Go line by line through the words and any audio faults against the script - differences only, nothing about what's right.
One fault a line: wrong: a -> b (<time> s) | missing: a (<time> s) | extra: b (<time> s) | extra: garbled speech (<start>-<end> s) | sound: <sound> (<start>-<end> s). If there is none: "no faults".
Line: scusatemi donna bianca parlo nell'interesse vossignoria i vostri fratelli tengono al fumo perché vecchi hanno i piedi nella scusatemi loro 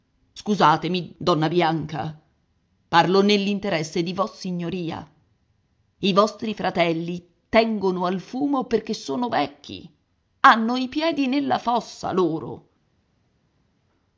extra: di (4.0 s)
extra: sono (8.9 s)
wrong: scusatemi -> fossa (11.6 s)